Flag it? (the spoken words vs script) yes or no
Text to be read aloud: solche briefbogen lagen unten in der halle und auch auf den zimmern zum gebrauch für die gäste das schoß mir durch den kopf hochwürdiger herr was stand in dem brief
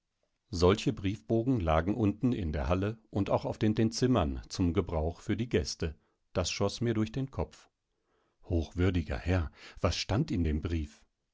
yes